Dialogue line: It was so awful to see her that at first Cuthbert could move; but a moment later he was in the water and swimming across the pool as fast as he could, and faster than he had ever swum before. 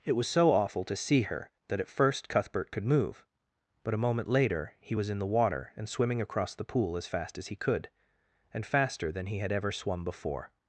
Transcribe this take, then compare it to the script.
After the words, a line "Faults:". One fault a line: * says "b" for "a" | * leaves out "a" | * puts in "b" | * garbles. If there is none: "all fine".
It was so awful to see her that at first Cuthbert could move; but a moment later he was in the water and swimming across the pool as fast as he could, and faster than he had ever swum before.
Faults:
all fine